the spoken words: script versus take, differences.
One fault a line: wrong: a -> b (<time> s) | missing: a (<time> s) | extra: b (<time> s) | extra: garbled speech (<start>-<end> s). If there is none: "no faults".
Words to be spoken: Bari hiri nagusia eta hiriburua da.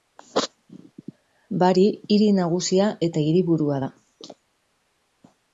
no faults